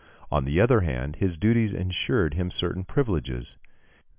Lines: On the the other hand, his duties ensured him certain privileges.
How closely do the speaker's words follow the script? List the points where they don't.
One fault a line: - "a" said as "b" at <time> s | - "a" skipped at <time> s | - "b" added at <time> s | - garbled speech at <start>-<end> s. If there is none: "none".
- "the" skipped at 0.6 s